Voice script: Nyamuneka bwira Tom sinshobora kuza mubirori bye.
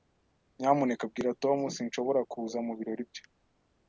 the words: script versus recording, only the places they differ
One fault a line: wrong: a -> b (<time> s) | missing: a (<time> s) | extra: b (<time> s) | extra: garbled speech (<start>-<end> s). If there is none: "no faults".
no faults